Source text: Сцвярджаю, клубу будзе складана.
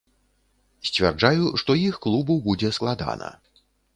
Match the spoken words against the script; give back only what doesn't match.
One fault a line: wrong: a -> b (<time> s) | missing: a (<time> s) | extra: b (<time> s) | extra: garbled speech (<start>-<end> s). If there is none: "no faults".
extra: што іх (1.6 s)